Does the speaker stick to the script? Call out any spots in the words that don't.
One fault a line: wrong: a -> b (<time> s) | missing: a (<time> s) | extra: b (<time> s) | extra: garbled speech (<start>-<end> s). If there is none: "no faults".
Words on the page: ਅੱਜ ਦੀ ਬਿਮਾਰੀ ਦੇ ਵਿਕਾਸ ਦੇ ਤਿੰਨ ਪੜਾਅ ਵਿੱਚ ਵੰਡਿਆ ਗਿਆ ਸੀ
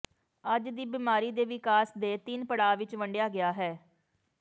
wrong: ਸੀ -> ਹੈ (3.5 s)